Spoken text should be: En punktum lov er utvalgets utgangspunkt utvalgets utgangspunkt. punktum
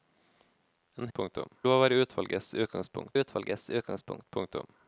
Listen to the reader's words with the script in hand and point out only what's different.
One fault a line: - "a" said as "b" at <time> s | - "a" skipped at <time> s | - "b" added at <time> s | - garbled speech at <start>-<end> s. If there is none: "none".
none